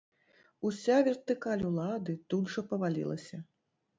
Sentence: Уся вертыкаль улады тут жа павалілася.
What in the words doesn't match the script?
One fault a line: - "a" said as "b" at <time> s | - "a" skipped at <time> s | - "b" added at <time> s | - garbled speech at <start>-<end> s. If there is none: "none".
none